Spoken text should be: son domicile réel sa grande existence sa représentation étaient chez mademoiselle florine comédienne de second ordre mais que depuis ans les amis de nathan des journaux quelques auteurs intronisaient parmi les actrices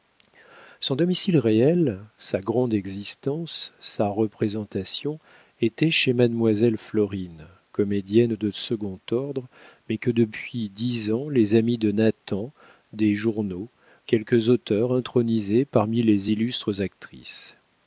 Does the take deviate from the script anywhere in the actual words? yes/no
yes